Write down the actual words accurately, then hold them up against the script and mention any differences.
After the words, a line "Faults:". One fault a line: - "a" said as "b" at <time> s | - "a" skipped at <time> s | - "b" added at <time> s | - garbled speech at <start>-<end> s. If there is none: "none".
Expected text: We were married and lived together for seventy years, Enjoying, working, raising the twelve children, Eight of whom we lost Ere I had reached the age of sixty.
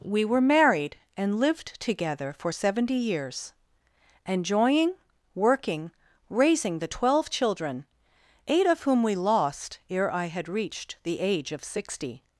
We were married and lived together for seventy years, Enjoying, working, raising the twelve children, Eight of whom we lost Ere I had reached the age of sixty.
Faults:
none